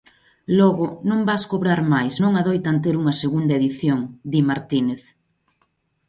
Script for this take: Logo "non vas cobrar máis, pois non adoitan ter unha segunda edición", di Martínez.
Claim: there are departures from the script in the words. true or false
true